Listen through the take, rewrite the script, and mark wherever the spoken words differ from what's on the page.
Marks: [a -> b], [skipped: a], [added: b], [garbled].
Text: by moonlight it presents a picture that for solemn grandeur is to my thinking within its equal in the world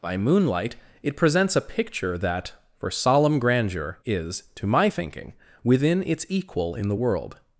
by moonlight it presents a picture that for solemn grandeur is to my thinking within its equal in the world